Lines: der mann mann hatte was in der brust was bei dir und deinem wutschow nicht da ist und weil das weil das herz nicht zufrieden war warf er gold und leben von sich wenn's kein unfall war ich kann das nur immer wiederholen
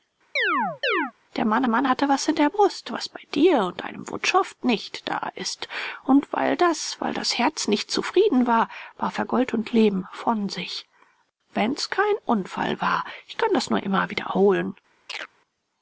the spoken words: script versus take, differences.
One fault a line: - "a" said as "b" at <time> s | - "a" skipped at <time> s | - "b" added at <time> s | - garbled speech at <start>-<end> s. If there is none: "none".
none